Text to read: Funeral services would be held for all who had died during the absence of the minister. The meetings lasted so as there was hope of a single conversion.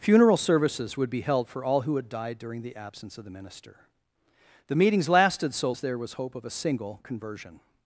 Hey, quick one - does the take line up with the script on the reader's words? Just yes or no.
yes